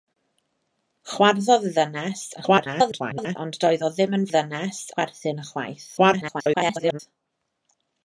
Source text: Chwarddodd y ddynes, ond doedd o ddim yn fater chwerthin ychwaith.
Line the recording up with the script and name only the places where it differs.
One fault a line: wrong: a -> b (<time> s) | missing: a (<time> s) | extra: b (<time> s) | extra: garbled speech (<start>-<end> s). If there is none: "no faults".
extra: garbled speech (2.4-3.4 s)
wrong: fater -> ddynes (4.3 s)
extra: garbled speech (6.0-7.0 s)